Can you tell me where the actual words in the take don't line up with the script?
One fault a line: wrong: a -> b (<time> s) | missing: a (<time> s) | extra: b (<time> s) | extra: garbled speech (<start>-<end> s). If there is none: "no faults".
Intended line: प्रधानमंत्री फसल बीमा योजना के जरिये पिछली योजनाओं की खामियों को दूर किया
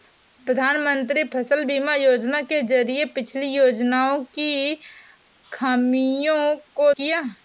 missing: दूर (6.9 s)